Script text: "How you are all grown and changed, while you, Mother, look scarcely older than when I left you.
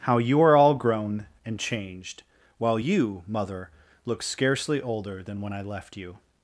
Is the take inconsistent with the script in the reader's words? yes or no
no